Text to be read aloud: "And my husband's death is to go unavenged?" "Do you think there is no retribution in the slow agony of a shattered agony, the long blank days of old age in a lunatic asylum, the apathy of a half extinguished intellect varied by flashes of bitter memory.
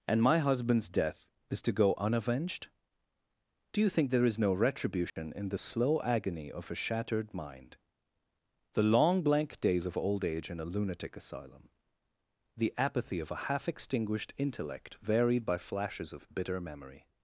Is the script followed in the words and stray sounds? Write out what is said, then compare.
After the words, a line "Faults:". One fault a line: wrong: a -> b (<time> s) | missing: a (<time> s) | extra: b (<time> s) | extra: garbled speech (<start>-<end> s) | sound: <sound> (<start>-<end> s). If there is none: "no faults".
"And my husband's death is to go unavenged?" "Do you think there is no retribution in the slow agony of a shattered mind, the long blank days of old age in a lunatic asylum, the apathy of a half extinguished intellect varied by flashes of bitter memory.
Faults:
sound: dropout (5.1-5.2 s)
wrong: agony -> mind (7.3 s)